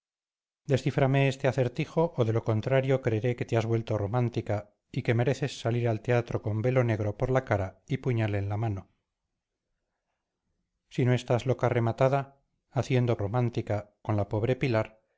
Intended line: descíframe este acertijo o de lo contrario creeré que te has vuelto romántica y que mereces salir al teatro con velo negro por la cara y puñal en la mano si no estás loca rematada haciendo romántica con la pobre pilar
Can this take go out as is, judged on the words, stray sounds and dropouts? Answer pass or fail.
pass